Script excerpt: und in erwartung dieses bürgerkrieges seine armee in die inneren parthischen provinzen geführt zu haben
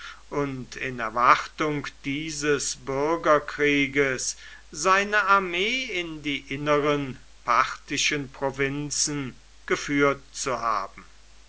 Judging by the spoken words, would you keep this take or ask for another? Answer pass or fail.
pass